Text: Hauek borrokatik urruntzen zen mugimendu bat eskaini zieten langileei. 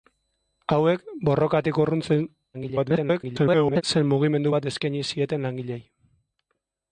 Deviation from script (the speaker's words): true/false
true